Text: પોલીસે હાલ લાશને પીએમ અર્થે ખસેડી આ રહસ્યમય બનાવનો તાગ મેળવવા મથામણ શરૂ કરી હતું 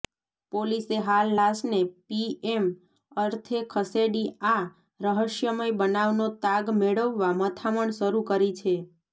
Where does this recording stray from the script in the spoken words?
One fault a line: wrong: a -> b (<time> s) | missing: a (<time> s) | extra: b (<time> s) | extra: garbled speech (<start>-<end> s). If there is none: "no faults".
wrong: હતું -> છે (8.6 s)